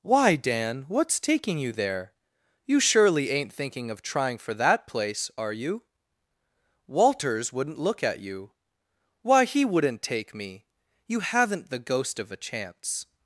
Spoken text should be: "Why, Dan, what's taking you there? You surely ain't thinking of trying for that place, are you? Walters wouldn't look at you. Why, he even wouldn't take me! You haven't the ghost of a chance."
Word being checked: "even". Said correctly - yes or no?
no